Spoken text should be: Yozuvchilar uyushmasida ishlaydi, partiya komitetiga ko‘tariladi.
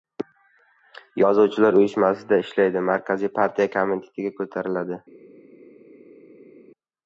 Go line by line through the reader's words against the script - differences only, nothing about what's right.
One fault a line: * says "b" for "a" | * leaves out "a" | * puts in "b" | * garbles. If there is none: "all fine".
* puts in "markaziy"